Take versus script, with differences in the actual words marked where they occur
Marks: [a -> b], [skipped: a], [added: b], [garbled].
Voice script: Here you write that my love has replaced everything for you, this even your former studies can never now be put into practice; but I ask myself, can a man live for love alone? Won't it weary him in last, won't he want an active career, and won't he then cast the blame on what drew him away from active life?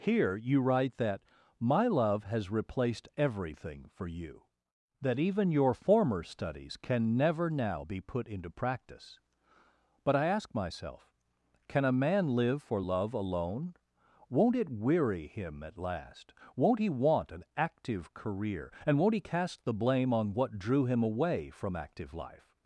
Here you write that my love has replaced everything for you, [this -> that] even your former studies can never now be put into practice; but I ask myself, can a man live for love alone? Won't it weary him [in -> at] last, won't he want an active career, and won't he [skipped: then] cast the blame on what drew him away from active life?